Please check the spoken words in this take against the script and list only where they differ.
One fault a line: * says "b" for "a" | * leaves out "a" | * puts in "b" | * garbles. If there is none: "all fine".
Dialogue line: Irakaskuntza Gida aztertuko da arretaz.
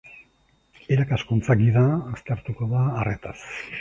all fine